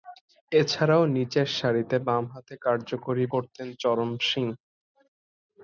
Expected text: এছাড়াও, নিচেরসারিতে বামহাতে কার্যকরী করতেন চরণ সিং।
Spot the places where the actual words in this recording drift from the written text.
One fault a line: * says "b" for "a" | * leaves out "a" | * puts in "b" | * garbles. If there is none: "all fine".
all fine